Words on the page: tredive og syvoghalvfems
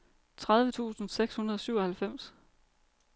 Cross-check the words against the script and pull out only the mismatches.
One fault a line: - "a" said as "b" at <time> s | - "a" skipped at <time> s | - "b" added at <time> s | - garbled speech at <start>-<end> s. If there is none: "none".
- "tusind seks hundrede" added at 0.7 s